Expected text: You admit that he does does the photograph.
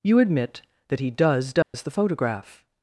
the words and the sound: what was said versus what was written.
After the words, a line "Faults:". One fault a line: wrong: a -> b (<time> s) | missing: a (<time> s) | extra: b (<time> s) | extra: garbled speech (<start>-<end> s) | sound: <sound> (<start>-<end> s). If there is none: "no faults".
You admit that he does does the photograph.
Faults:
sound: dropout (1.6-1.7 s)